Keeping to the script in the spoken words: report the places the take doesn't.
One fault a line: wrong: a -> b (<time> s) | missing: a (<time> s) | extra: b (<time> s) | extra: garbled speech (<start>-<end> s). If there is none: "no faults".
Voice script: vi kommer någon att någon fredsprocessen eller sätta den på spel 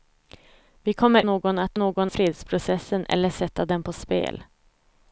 no faults